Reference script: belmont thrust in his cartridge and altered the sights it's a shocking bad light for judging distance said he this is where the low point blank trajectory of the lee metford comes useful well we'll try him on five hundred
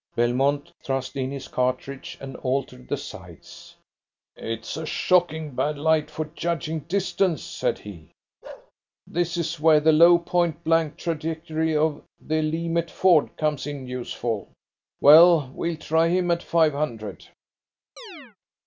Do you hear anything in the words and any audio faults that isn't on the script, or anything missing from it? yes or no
yes